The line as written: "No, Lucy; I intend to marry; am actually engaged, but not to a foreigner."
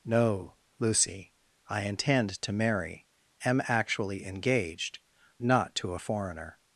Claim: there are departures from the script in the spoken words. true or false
true